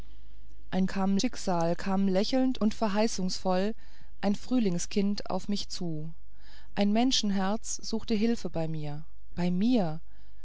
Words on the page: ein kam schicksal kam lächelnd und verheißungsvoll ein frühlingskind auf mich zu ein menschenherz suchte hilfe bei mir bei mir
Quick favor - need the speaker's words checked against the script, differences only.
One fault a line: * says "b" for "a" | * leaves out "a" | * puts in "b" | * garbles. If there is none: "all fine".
all fine